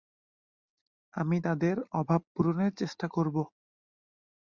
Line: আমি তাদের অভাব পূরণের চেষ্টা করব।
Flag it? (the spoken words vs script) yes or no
no